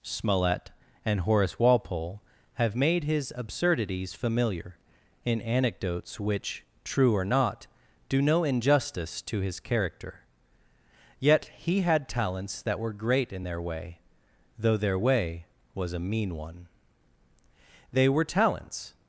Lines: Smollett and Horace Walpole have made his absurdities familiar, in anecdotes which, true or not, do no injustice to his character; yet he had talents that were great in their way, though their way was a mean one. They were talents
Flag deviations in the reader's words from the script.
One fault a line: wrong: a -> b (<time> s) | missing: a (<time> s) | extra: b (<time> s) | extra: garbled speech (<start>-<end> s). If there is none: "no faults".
no faults